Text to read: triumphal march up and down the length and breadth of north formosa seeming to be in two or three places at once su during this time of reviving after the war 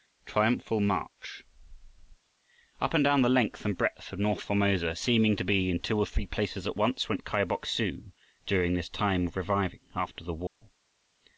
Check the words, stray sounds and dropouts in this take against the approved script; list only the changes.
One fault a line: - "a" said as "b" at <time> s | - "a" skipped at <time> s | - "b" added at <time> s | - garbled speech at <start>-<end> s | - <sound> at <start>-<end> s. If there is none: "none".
- "went kai bok" added at 7.1 s
- dropout at 10.5-10.6 s